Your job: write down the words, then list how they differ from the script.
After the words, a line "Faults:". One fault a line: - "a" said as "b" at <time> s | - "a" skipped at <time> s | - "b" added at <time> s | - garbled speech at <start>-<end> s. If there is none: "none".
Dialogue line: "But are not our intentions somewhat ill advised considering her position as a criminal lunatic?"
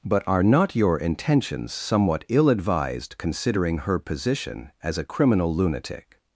"But are not your intentions somewhat ill advised considering her position as a criminal lunatic?"
Faults:
- "our" said as "your" at 0.8 s